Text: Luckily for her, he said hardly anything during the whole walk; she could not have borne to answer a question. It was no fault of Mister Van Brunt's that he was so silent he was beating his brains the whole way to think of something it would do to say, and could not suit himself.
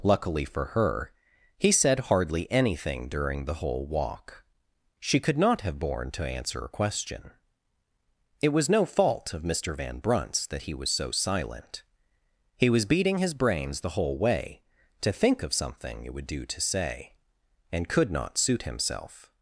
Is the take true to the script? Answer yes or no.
yes